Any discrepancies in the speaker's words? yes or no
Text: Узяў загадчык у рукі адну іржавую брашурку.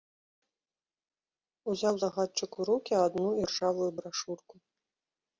no